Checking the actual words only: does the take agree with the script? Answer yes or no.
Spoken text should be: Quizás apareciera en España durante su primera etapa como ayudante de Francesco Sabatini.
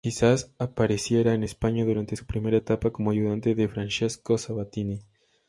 yes